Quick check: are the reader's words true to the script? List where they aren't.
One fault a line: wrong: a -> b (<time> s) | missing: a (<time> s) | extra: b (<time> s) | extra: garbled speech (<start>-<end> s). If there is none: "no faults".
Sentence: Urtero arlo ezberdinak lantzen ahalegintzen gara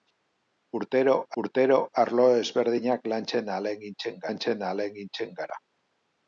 extra: urtero (1.4 s)
extra: lantzen ahalegintzen (4.3 s)